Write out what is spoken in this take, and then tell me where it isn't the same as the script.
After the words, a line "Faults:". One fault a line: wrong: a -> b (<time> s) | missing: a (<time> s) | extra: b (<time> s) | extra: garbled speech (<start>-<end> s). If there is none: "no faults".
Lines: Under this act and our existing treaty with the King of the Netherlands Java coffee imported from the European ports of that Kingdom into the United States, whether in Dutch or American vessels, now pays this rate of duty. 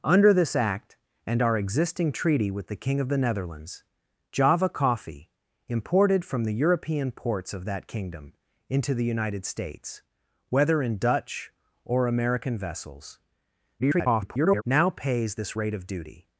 Under this act and our existing treaty with the King of the Netherlands Java coffee imported from the European ports of that Kingdom into the United States, whether in Dutch or American vessels, [garbled] now pays this rate of duty.
Faults:
extra: garbled speech (13.8-14.6 s)